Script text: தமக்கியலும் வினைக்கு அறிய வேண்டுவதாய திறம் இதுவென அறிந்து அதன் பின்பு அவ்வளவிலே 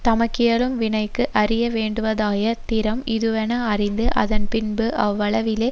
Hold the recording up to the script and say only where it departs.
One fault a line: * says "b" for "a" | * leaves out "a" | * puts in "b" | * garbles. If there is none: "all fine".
all fine